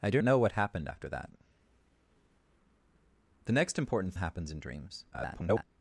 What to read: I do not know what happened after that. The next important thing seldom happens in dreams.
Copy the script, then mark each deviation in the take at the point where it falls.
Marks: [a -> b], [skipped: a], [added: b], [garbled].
I do [skipped: not] know what happened after that. The next important [skipped: thing seldom] happens in dreams. [garbled]